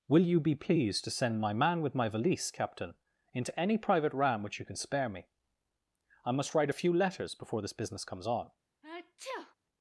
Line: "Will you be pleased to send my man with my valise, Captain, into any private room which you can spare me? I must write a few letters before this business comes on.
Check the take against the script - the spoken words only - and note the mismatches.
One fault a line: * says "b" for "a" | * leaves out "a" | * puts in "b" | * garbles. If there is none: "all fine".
* says "ram" for "room"